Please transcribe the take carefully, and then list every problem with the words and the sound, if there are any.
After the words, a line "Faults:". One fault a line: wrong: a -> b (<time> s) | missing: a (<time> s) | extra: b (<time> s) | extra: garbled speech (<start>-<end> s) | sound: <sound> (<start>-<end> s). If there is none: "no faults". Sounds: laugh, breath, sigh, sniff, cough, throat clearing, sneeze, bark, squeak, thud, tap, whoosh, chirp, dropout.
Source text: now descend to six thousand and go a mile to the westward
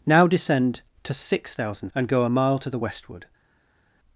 now descend to six thousand and go a mile to the westward
Faults:
no faults